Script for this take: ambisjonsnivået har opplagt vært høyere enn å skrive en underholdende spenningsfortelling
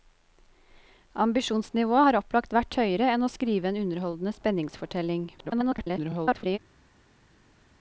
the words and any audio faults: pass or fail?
fail